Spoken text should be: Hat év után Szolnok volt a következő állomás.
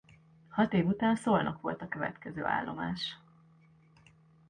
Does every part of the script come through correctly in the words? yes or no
yes